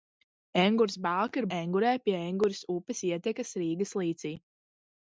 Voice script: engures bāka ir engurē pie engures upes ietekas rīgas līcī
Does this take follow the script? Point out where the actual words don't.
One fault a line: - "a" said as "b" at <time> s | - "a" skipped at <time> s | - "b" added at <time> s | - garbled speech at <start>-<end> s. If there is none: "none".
none